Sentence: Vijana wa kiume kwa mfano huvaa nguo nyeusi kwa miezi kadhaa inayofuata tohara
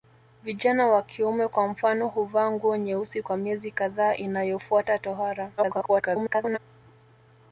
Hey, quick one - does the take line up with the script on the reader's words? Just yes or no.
no